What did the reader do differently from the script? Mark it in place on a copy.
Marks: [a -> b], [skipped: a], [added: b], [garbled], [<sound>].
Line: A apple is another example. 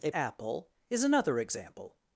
A apple is another example.